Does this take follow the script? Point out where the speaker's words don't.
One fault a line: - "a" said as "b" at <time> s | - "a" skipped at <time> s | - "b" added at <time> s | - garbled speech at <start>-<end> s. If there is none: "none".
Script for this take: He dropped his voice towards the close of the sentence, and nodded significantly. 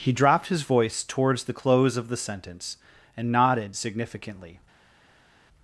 none